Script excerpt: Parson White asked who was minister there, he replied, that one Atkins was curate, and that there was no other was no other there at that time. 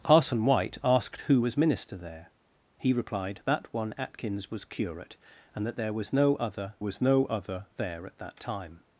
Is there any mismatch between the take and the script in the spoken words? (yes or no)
no